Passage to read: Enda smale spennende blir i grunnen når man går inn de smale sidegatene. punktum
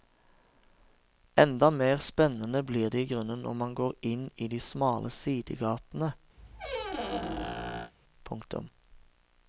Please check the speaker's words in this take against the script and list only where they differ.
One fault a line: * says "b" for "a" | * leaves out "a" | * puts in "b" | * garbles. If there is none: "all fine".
* says "mer" for "smale"
* puts in "det"
* puts in "i"